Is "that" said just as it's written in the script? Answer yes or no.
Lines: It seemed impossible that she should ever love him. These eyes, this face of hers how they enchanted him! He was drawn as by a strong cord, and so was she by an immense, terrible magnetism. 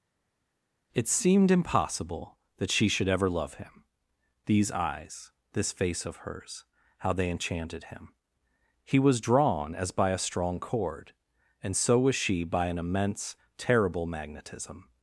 yes